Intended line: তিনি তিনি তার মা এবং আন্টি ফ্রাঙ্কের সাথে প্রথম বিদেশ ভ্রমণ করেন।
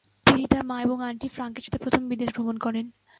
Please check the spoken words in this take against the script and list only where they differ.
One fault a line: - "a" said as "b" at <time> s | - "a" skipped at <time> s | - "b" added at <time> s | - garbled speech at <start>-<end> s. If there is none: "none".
- "তিনি" skipped at 0.4 s